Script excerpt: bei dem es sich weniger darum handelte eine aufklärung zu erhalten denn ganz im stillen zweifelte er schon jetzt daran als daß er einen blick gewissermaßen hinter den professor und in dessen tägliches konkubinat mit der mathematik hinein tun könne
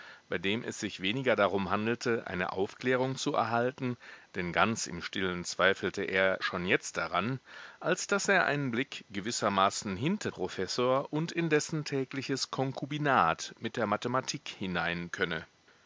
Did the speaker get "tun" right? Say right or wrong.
wrong